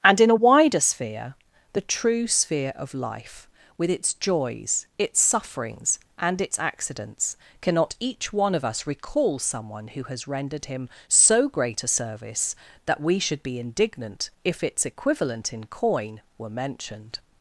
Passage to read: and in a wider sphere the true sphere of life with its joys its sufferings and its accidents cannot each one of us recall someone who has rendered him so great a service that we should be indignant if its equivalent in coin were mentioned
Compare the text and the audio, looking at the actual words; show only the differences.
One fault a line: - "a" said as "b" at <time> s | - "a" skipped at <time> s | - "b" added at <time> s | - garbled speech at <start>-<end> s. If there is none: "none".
none